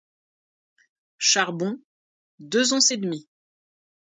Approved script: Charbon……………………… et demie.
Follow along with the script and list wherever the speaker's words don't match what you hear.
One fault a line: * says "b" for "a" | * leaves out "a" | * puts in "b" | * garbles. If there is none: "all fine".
* puts in "deux onces"